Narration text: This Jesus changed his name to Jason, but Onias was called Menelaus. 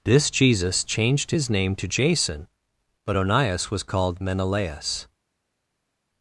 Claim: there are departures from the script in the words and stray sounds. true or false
false